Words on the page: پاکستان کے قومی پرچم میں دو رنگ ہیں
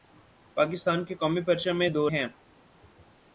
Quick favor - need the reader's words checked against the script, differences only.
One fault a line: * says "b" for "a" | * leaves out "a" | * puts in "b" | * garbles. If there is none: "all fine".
* leaves out "رنگ"